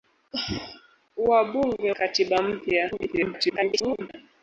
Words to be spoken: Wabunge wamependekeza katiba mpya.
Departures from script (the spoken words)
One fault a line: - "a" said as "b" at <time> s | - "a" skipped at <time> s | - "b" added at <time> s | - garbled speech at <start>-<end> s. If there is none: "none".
- "wamependekeza" skipped at 1.9 s
- garbled speech at 2.9-4.1 s